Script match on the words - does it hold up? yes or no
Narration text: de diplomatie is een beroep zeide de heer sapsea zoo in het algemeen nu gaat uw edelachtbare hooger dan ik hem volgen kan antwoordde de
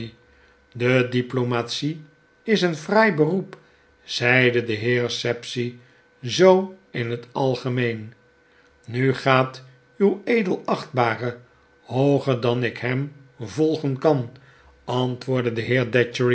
no